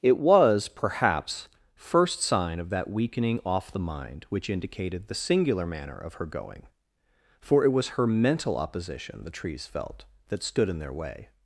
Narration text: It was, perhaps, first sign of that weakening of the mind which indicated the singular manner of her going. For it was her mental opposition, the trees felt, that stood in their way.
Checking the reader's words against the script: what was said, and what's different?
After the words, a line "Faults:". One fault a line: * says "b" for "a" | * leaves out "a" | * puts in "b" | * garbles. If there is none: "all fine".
It was, perhaps, first sign of that weakening off the mind which indicated the singular manner of her going. For it was her mental opposition, the trees felt, that stood in their way.
Faults:
* says "off" for "of"